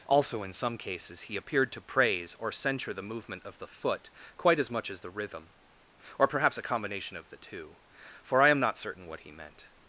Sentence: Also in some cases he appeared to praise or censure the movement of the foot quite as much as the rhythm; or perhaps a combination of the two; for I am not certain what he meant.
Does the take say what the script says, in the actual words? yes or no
yes